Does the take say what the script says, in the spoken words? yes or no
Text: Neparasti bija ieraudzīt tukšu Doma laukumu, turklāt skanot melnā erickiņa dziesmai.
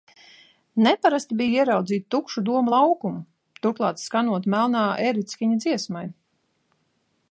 yes